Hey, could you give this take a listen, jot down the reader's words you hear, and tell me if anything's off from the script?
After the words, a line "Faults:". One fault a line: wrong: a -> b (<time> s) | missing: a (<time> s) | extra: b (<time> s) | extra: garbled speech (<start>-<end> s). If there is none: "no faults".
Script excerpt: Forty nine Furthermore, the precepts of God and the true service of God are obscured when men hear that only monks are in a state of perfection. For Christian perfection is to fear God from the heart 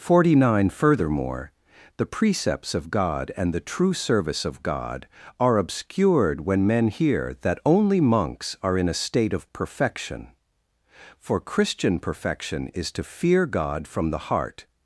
Forty nine Furthermore, the precepts of God and the true service of God are obscured when men hear that only monks are in a state of perfection. For Christian perfection is to fear God from the heart
Faults:
no faults